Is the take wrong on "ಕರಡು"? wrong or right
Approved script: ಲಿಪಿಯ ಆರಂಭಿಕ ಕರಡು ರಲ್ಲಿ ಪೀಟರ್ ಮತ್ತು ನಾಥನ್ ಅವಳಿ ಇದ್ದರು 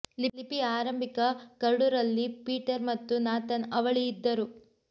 right